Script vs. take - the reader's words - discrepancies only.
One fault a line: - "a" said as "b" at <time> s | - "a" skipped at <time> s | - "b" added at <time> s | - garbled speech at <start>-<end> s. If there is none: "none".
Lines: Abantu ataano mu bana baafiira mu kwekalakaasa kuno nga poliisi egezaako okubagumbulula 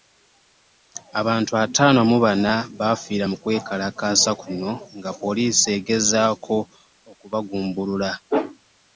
none